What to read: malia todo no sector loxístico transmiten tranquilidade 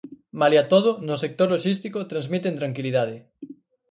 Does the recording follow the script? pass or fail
pass